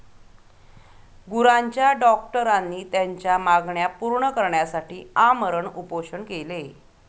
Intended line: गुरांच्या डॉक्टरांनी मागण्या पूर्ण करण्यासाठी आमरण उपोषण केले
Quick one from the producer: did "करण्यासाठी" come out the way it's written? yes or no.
yes